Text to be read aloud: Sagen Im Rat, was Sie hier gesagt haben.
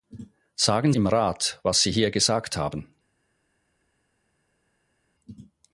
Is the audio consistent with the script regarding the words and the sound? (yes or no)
yes